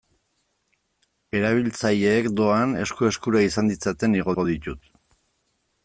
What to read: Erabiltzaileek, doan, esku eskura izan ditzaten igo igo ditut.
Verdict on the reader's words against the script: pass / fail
pass